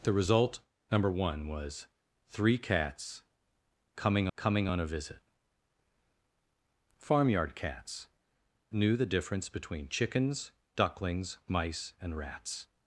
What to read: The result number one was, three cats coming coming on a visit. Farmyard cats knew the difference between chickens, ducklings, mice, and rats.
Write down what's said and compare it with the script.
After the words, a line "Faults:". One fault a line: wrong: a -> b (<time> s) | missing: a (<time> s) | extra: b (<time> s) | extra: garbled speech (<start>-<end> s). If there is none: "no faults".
The result number one was, three cats coming coming on a visit. Farmyard cats knew the difference between chickens, ducklings, mice, and rats.
Faults:
no faults